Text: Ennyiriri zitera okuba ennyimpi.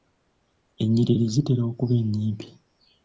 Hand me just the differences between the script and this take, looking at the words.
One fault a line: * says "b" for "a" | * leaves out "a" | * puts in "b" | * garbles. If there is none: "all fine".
all fine